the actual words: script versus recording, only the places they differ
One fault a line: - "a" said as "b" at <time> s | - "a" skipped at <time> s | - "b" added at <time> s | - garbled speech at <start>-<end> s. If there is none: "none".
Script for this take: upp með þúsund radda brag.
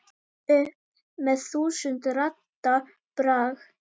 none